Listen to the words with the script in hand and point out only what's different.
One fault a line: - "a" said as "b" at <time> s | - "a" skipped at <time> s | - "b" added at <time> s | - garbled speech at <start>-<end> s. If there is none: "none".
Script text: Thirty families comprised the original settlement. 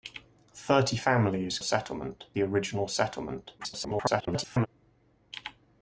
- "comprised" said as "settlement" at 1.6 s
- garbled speech at 3.6-4.7 s